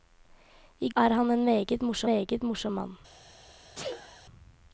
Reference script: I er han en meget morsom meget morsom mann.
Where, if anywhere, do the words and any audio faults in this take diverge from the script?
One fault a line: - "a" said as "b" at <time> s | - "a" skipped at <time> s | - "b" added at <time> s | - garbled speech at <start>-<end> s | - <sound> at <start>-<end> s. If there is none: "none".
- sneeze at 3.7-4.2 s